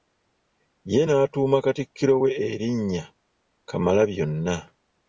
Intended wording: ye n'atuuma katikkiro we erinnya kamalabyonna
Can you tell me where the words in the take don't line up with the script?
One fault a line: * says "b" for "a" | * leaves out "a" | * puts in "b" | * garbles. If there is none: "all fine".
all fine